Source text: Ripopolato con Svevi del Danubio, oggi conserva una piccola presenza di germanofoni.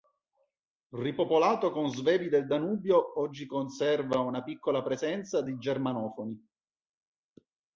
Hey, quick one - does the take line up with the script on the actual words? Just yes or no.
yes